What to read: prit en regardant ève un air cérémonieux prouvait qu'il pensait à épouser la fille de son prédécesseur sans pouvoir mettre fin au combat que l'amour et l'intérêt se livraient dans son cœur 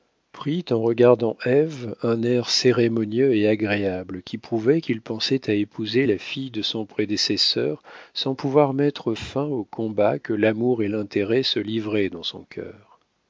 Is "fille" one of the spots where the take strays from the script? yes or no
no